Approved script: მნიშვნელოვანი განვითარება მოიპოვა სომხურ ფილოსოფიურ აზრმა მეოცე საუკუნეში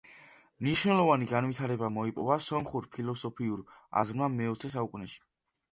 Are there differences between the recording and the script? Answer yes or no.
no